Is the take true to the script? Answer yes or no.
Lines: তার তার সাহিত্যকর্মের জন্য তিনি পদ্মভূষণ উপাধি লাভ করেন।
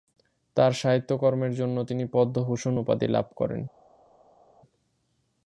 no